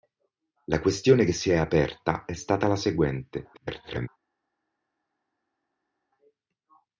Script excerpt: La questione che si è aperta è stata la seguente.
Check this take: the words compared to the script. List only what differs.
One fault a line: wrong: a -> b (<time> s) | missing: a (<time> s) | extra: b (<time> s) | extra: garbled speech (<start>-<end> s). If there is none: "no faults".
extra: garbled speech (3.5-4.1 s)